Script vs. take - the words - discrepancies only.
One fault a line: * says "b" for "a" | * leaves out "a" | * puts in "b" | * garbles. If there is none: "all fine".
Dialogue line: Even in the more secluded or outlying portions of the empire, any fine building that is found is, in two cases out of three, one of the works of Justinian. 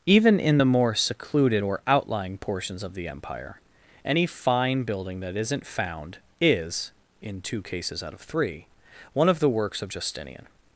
* says "isn't" for "is"